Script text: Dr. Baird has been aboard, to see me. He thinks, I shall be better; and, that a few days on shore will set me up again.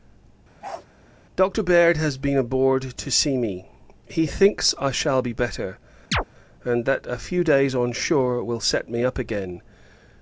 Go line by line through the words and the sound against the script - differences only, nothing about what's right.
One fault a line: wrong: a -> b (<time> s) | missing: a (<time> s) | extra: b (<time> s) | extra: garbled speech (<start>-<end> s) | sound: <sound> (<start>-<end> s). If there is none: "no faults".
sound: bark (0.6-0.9 s)
sound: chirp (6.1-6.2 s)